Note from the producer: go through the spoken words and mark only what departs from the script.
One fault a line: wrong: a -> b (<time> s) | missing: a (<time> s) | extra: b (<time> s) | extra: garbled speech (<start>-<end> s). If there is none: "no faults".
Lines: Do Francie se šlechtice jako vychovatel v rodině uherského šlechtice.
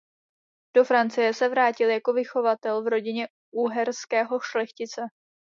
wrong: šlechtice -> vrátil (1.5 s)